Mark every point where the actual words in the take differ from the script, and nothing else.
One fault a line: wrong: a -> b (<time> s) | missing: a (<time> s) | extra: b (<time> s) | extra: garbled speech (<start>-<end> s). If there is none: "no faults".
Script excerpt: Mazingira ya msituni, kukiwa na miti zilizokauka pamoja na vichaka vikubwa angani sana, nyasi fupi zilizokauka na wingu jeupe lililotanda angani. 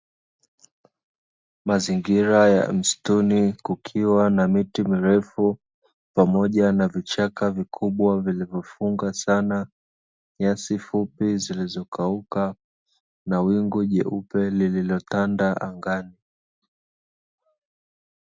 wrong: zilizokauka -> mirefu (4.8 s)
wrong: angani -> vilivyofunga (8.2 s)